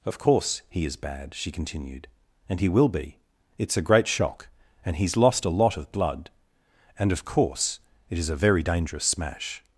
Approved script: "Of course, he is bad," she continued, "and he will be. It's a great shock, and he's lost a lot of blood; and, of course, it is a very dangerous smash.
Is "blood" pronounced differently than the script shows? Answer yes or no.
no